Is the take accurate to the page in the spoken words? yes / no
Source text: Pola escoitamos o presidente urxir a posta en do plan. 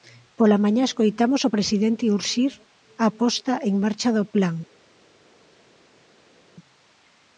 no